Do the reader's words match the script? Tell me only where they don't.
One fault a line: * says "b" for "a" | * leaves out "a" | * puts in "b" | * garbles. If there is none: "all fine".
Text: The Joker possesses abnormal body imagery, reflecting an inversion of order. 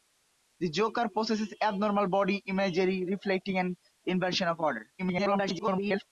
* garbles